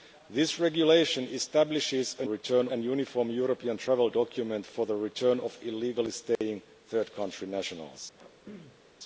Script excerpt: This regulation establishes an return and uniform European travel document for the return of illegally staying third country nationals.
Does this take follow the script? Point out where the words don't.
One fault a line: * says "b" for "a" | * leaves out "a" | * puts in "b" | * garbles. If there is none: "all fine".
all fine